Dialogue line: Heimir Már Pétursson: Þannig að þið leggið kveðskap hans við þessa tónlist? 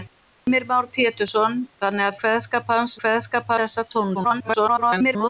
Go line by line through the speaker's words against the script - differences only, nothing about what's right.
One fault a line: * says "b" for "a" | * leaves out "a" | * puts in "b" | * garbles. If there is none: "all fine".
* leaves out "þið leggið"
* says "kveðskap" for "við"
* garbles